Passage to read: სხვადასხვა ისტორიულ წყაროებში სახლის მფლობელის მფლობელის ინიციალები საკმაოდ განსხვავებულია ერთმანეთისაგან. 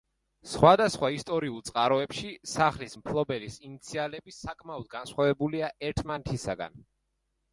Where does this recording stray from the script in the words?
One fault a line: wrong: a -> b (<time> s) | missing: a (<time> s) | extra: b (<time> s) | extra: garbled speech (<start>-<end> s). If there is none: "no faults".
missing: მფლობელის (3.6 s)